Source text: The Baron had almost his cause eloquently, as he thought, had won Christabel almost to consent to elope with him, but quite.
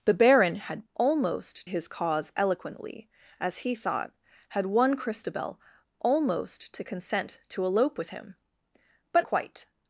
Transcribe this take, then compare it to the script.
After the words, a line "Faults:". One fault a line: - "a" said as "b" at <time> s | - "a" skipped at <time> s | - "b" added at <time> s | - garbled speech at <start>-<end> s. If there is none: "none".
The Baron had almost his cause eloquently, as he thought, had won Christabel almost to consent to elope with him, but quite.
Faults:
none